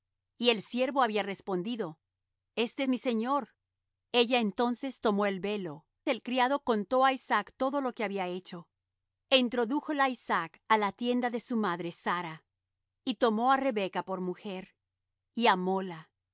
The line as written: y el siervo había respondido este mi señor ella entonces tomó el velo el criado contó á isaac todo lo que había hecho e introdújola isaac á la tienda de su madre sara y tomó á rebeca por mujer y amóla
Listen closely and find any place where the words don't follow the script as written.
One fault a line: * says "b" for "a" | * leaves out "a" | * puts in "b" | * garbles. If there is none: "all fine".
all fine